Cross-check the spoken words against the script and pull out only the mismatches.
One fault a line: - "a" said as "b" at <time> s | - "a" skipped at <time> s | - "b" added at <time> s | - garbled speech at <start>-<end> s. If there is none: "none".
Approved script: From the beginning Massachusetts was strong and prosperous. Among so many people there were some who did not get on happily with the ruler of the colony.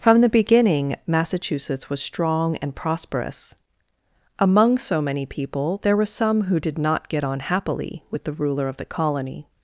none